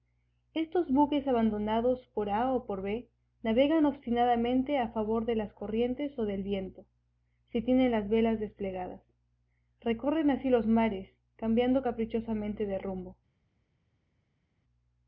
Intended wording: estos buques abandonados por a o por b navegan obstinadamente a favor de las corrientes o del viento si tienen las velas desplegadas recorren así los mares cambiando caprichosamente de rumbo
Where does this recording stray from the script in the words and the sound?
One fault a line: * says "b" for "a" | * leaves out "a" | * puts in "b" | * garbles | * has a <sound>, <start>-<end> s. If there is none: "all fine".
all fine